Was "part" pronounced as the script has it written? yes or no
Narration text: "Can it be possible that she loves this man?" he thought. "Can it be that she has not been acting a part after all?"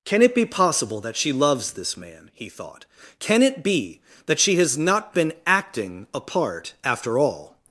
yes